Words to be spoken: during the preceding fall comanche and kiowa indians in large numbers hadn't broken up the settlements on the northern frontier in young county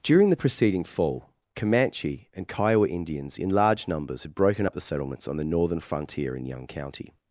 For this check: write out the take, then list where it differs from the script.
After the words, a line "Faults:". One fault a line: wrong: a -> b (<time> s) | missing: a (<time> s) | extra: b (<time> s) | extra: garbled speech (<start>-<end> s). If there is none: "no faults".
during the preceding fall comanche and kiowa indians in large numbers had broken up the settlements on the northern frontier in young county
Faults:
wrong: hadn't -> had (4.2 s)